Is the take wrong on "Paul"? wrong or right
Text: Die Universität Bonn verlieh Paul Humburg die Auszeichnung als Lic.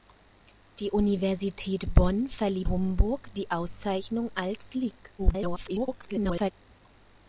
wrong